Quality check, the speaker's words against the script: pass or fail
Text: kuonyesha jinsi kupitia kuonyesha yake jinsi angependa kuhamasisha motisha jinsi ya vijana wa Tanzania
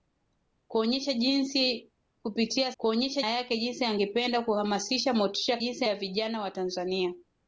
pass